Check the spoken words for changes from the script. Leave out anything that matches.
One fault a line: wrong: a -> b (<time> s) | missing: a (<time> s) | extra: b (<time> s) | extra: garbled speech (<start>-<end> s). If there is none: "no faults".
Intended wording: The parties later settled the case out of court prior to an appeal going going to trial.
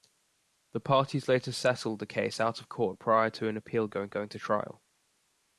no faults